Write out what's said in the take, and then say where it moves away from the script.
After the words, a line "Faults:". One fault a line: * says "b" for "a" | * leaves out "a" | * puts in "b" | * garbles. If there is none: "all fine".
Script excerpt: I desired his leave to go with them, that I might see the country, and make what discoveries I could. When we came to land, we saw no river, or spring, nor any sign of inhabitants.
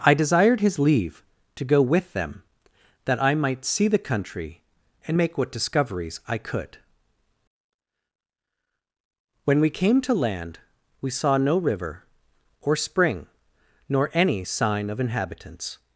I desired his leave to go with them, that I might see the country, and make what discoveries I could. When we came to land, we saw no river, or spring, nor any sign of inhabitants.
Faults:
all fine